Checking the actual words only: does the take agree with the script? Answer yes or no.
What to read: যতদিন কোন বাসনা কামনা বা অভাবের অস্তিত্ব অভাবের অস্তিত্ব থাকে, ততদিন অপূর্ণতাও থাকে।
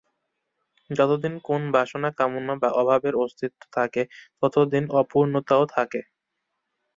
no